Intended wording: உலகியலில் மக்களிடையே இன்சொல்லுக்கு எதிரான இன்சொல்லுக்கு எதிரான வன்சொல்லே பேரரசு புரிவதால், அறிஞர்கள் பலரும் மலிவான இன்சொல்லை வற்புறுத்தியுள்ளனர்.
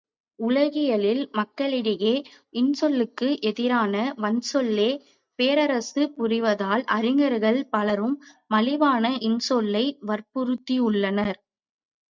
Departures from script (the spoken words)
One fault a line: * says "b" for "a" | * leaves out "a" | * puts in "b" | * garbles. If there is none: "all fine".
* leaves out "இன்சொல்லுக்கு எதிரான"